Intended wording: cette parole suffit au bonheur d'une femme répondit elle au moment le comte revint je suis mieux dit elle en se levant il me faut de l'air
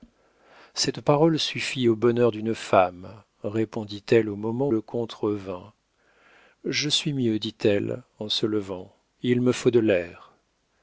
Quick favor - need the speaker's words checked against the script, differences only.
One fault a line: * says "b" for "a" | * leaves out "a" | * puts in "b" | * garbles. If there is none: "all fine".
all fine